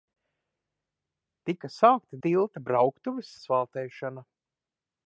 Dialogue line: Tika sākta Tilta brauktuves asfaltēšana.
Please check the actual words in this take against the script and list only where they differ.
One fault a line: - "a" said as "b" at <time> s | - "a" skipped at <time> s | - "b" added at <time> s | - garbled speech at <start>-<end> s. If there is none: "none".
none